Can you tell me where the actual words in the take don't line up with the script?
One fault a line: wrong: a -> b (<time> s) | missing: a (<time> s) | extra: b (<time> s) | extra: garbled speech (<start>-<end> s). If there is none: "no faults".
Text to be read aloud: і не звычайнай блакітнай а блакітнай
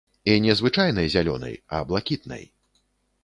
wrong: блакітнай -> зялёнай (1.1 s)